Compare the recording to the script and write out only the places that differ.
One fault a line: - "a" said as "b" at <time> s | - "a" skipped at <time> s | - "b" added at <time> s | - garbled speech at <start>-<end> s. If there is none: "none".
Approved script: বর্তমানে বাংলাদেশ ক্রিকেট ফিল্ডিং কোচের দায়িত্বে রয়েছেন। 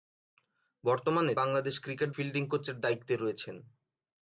none